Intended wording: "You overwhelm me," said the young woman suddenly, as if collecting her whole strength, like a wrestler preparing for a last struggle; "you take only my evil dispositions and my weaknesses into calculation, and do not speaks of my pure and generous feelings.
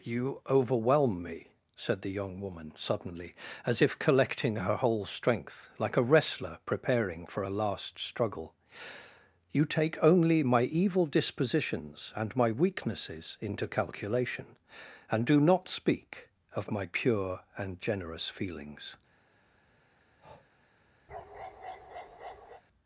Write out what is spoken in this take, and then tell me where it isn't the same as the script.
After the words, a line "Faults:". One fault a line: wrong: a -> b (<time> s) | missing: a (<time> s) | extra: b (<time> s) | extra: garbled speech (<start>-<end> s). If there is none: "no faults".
"You overwhelm me," said the young woman suddenly, as if collecting her whole strength, like a wrestler preparing for a last struggle; "you take only my evil dispositions and my weaknesses into calculation, and do not speak of my pure and generous feelings.
Faults:
wrong: speaks -> speak (15.7 s)